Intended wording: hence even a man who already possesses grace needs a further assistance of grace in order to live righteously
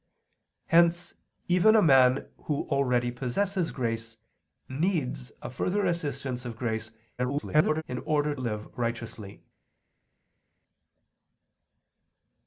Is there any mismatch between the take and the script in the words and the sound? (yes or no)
yes